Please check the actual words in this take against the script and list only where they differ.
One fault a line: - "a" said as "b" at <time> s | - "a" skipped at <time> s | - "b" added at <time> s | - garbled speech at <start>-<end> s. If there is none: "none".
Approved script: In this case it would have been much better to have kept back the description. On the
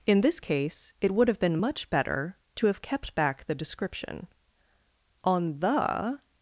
none